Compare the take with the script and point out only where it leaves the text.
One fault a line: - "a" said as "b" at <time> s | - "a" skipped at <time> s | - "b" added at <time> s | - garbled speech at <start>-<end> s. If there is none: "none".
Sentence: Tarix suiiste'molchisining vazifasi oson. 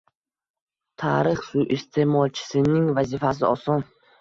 none